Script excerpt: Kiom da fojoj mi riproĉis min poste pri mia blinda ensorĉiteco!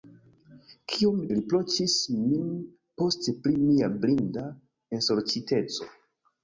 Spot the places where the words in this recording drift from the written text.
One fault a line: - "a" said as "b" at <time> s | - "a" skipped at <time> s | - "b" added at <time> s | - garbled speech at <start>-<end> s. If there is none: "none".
- "da fojoj mi" skipped at 1.2 s